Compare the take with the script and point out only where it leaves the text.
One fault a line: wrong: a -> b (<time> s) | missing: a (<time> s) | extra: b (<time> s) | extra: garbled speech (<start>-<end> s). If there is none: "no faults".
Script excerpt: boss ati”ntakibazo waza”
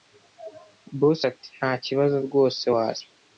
extra: rwose (2.2 s)